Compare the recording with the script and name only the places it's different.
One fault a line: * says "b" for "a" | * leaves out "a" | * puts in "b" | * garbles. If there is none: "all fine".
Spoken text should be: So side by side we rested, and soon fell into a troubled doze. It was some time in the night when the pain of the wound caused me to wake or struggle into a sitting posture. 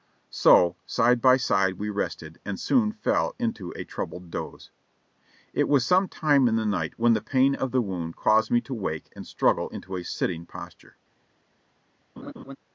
* says "and" for "or"